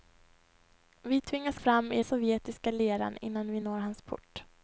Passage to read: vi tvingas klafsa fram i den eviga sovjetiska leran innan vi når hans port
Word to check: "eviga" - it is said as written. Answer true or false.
false